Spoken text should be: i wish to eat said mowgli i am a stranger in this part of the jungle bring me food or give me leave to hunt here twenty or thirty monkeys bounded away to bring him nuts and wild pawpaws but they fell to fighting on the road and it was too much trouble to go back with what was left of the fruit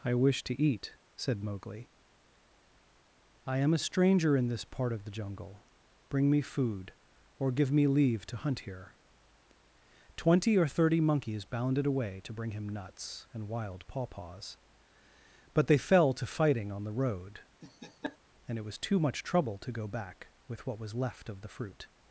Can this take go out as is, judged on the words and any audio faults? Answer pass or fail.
fail